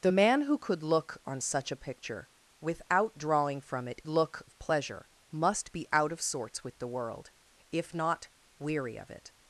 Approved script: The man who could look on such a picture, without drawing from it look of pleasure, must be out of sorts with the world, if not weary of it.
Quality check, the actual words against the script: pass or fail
pass